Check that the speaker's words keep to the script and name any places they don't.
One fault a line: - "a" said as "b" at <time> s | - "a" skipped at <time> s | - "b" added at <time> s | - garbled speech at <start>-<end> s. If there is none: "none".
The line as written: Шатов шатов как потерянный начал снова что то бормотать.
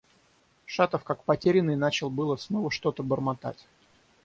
- "шатов" skipped at 1.0 s
- "было" added at 2.1 s